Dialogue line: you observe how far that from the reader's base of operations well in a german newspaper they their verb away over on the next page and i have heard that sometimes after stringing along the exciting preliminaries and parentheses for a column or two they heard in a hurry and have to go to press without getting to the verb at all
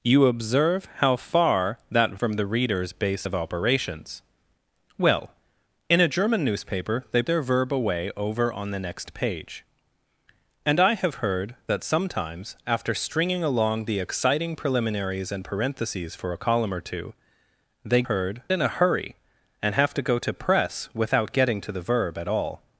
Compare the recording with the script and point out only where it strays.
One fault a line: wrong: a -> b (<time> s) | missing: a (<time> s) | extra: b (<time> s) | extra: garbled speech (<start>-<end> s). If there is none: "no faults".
no faults